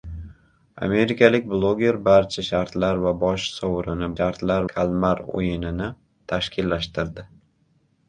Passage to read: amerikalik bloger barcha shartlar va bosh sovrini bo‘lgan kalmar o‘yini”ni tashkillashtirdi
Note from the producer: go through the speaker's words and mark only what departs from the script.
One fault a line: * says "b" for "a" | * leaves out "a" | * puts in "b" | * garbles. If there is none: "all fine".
* says "shartlar" for "bo‘lgan"